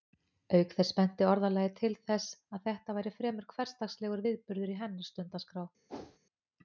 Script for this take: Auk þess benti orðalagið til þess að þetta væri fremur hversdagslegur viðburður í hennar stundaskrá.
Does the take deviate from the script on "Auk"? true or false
false